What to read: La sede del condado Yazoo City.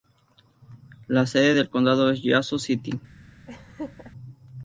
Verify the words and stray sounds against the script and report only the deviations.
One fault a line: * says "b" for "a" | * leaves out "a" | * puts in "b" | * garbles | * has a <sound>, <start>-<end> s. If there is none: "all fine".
* puts in "es"
* has a laugh, 3.5-4.1 s